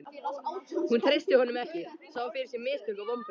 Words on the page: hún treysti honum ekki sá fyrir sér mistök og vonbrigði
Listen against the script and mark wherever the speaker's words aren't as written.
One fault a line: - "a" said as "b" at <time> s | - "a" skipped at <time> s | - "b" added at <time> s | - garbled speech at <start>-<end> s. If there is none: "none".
none